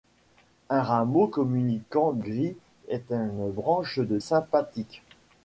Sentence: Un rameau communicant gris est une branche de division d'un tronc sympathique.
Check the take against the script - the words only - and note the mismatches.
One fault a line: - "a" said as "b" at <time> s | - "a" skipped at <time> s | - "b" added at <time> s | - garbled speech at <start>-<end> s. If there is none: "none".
- "division d'un tronc" skipped at 4.2 s